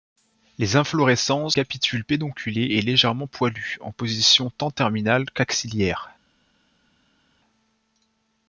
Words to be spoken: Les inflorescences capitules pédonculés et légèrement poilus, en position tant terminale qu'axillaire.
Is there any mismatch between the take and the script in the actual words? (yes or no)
no